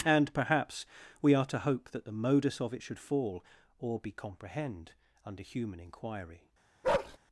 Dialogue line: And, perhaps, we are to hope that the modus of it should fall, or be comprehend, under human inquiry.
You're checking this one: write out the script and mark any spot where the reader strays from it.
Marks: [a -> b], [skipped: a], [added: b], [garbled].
And, perhaps, we are to hope that the modus of it should fall, or be comprehend, under human inquiry.